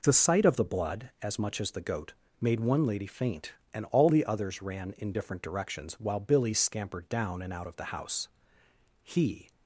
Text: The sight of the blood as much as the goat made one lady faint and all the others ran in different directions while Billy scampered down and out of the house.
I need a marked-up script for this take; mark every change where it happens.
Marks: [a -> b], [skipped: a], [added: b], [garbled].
The sight of the blood as much as the goat made one lady faint and all the others ran in different directions while Billy scampered down and out of the house. [added: He]